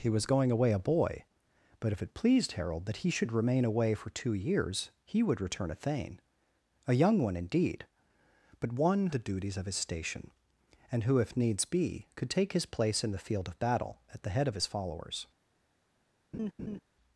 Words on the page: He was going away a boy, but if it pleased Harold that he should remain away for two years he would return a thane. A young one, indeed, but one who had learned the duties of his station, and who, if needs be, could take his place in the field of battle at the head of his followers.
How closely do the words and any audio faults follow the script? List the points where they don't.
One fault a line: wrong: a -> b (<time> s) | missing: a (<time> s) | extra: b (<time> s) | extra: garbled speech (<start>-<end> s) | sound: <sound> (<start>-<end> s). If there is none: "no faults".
missing: who had learned (9.1 s)
sound: laugh (16.3-16.8 s)